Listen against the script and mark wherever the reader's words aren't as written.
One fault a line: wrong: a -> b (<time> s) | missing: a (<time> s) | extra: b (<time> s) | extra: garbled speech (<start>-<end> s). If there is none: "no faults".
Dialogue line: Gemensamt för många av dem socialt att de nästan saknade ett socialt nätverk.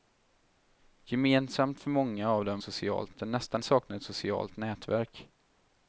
no faults